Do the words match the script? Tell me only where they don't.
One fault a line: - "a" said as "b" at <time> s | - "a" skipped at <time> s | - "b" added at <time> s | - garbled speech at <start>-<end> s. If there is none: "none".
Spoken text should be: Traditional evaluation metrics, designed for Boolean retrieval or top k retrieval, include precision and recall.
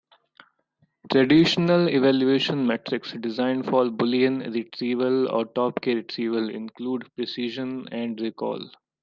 none